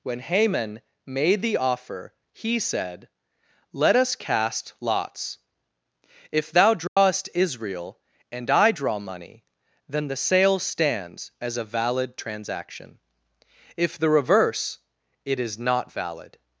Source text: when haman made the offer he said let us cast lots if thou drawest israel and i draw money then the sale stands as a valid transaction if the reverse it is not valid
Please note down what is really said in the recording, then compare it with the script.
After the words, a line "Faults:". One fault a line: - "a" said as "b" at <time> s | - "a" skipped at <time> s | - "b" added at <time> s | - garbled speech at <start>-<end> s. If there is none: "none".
when haman made the offer he said let us cast lots if thou drawest israel and i draw money then the sale stands as a valid transaction if the reverse it is not valid
Faults:
none